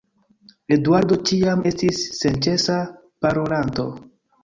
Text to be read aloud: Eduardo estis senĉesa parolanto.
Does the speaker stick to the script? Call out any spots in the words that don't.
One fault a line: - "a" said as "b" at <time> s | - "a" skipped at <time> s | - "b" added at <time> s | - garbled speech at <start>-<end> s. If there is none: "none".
- "ĉiam" added at 1.3 s